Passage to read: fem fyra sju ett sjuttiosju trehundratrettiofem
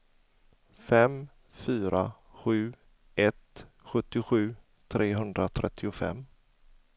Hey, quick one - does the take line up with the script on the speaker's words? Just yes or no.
yes